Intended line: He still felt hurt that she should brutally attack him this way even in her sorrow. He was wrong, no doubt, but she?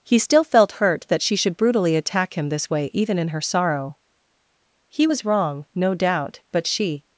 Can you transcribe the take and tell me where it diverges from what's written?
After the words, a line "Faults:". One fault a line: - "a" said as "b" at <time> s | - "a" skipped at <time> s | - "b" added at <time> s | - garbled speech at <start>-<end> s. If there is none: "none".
He still felt hurt that she should brutally attack him this way even in her sorrow. He was wrong, no doubt, but she?
Faults:
none